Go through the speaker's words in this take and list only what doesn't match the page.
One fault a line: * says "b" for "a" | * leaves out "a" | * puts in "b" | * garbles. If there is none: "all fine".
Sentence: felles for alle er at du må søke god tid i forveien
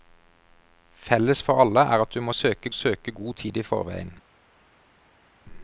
* puts in "søke"